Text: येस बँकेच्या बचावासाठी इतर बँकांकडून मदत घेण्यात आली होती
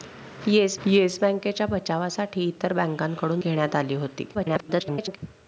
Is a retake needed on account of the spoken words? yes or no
yes